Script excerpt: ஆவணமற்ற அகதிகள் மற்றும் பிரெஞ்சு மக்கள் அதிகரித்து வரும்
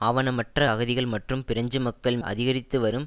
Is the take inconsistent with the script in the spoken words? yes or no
no